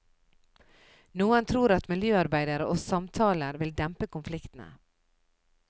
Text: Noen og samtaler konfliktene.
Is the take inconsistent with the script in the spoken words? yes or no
yes